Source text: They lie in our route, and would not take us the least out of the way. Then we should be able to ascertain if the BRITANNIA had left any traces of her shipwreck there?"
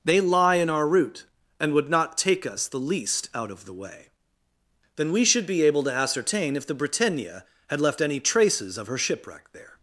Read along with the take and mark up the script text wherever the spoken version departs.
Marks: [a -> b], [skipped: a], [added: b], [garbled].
They lie in our route, and would not take us the least out of the way. Then we should be able to ascertain if the BRITANNIA had left any traces of her shipwreck there?"